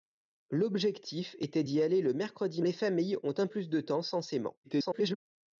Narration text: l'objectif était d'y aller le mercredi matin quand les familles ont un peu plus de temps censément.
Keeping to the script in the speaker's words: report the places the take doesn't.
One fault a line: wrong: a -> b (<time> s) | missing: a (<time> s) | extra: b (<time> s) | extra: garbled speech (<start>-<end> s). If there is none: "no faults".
missing: matin quand (2.6 s)
missing: peu (3.5 s)
extra: garbled speech (4.6-5.2 s)